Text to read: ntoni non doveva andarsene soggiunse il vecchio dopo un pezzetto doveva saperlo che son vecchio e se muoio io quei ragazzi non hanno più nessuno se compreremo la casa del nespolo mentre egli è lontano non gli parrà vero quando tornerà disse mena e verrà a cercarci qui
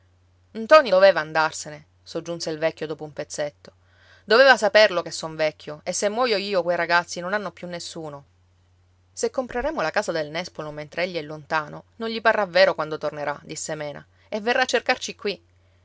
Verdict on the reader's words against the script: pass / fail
fail